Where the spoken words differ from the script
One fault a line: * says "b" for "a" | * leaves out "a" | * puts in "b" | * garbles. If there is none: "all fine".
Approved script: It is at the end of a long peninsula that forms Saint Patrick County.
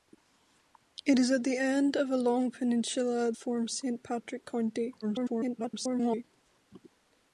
* leaves out "that"
* garbles